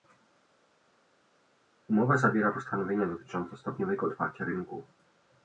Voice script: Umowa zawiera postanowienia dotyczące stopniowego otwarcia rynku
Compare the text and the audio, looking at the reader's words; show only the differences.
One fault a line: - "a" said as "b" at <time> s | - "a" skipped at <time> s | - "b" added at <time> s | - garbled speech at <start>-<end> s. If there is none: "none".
none